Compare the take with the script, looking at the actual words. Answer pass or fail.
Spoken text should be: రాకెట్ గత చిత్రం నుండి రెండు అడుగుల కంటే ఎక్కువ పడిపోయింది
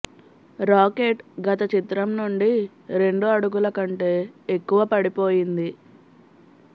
pass